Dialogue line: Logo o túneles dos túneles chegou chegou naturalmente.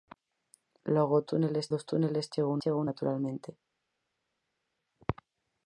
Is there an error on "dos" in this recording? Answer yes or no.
no